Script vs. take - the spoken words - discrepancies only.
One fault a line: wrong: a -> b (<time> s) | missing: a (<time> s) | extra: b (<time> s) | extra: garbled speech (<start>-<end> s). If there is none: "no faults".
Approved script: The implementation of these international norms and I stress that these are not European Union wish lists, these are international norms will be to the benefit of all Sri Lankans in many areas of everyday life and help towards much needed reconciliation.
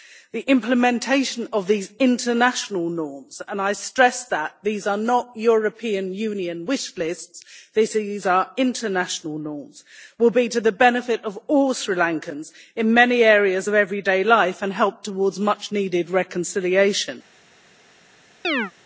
no faults